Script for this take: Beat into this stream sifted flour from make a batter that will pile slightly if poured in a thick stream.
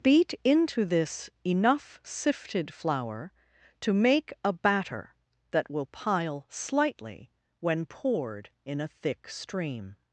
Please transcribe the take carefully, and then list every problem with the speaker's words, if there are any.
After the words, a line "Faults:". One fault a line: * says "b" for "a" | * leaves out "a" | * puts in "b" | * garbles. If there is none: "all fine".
Beat into this enough sifted flour to make a batter that will pile slightly when poured in a thick stream.
Faults:
* says "enough" for "stream"
* says "to" for "from"
* says "when" for "if"